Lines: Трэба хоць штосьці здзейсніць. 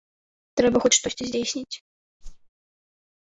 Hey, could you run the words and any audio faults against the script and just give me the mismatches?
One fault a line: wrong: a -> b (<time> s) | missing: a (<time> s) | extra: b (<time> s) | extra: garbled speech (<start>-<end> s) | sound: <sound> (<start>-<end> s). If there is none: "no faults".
sound: whoosh (2.2-2.5 s)